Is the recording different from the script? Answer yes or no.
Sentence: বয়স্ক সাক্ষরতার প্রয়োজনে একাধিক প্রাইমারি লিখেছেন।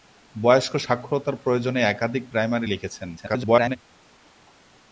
yes